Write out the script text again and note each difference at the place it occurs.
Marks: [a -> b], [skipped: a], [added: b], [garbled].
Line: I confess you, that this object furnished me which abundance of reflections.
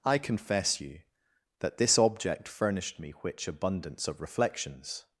I confess you, that this object furnished me which abundance of reflections.